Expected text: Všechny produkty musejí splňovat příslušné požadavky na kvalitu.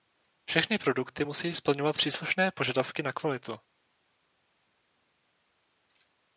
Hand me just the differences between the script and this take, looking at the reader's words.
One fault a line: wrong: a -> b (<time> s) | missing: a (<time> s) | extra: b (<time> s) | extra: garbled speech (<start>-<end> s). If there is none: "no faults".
no faults